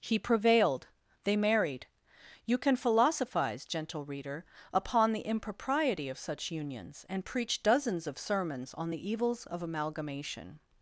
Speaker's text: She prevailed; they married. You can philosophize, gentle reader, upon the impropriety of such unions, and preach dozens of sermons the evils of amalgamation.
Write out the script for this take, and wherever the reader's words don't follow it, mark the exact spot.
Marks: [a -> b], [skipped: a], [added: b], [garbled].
[She -> He] prevailed; they married. You can philosophize, gentle reader, upon the impropriety of such unions, and preach dozens of sermons [added: on] the evils of amalgamation.